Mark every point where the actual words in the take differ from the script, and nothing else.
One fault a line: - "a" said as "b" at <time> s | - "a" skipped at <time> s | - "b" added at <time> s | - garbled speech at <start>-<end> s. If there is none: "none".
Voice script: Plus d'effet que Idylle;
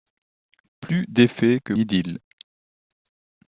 none